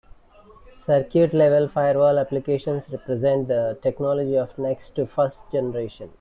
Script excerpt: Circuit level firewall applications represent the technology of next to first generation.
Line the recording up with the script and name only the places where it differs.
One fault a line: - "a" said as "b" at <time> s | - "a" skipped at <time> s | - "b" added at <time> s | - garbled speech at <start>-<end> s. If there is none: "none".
none